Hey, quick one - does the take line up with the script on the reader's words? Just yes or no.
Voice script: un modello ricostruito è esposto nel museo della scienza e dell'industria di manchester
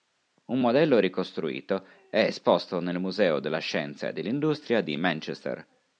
yes